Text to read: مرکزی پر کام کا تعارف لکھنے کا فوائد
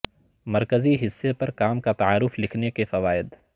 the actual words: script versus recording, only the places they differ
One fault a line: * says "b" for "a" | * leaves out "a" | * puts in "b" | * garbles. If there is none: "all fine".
* puts in "حصے"
* says "کے" for "کا"